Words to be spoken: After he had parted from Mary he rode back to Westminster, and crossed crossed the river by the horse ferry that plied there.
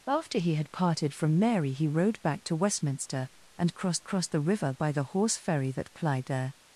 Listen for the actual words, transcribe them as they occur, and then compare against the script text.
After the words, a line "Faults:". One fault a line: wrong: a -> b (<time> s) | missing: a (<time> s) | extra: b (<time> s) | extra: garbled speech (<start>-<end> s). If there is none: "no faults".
After he had parted from Mary he rode back to Westminster, and crossed crossed the river by the horse ferry that plied there.
Faults:
no faults